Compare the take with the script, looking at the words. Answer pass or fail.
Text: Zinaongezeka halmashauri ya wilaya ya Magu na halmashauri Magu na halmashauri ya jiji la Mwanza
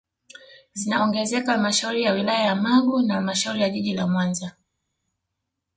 fail